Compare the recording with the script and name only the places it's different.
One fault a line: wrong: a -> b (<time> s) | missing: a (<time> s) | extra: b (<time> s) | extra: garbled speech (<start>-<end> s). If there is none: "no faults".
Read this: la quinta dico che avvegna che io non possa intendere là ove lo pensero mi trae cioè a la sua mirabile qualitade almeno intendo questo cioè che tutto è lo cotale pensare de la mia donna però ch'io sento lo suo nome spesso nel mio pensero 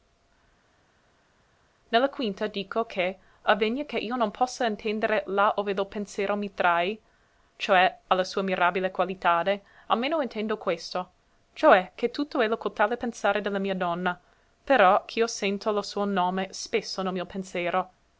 no faults